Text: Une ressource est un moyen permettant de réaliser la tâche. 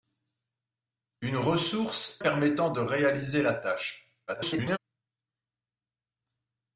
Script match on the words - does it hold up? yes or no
no